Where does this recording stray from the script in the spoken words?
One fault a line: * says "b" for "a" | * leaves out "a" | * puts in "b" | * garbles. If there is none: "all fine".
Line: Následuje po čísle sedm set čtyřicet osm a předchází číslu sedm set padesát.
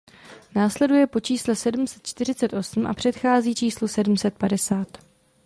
all fine